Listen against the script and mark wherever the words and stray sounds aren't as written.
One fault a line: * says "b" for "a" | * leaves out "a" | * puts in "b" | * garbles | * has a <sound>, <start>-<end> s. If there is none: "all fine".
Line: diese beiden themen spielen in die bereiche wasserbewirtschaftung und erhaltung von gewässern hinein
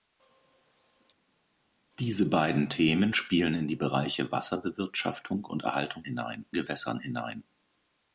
* says "hinein" for "von"